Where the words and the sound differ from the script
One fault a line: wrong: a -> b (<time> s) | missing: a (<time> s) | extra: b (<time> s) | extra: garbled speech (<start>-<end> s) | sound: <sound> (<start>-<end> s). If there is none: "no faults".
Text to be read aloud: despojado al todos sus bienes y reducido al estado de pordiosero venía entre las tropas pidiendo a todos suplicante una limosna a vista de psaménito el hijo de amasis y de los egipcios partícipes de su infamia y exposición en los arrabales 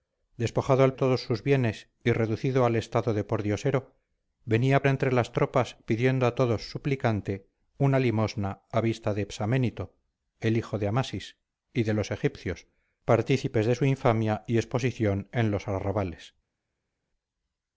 no faults